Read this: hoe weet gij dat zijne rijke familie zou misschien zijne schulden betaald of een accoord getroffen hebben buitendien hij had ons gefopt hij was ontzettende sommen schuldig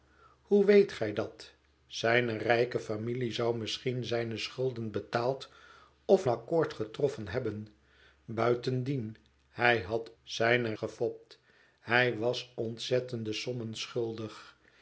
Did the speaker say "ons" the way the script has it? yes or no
no